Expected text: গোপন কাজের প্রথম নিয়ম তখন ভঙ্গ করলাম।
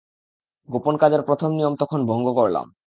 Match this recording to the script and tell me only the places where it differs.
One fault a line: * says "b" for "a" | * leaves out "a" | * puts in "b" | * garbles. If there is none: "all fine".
all fine